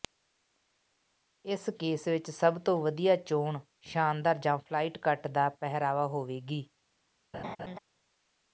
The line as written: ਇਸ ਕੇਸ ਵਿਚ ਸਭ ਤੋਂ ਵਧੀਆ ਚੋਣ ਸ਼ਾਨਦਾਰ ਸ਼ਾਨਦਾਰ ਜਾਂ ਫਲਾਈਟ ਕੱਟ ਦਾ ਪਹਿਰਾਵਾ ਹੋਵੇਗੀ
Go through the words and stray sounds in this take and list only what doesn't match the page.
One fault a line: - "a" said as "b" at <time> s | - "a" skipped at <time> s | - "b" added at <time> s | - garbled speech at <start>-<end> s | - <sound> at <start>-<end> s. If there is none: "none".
- "ਸ਼ਾਨਦਾਰ" skipped at 4.4 s
- laugh at 7.3-7.8 s